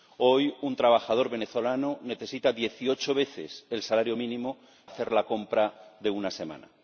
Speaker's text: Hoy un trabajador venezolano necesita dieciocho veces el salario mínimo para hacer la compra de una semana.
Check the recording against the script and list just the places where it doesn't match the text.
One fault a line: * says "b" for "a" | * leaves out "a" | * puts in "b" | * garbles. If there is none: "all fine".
* leaves out "para"